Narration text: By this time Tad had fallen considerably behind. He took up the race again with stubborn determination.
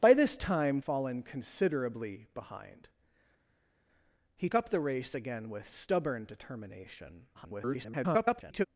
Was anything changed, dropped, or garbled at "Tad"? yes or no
yes